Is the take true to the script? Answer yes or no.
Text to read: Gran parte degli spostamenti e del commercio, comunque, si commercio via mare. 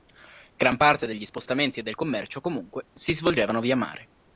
no